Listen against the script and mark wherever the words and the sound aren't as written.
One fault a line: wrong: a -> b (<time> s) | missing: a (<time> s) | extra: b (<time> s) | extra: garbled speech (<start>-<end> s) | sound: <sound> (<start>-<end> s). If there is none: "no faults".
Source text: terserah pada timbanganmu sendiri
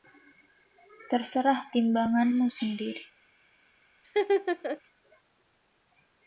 missing: pada (1.7 s)
sound: laugh (4.0-4.8 s)